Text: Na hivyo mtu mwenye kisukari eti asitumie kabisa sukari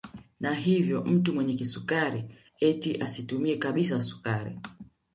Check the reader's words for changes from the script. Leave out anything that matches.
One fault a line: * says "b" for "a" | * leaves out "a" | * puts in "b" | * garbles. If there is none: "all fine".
all fine